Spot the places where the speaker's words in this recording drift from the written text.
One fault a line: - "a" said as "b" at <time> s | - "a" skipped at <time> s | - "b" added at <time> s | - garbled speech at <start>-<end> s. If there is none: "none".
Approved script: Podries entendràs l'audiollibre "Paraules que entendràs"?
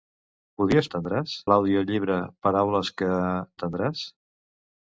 none